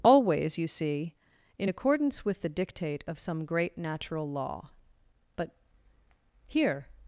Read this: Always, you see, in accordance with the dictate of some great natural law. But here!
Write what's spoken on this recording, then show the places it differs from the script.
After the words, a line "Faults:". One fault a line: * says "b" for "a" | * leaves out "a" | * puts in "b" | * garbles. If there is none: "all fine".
Always, you see, in accordance with the dictate of some great natural law. But here!
Faults:
all fine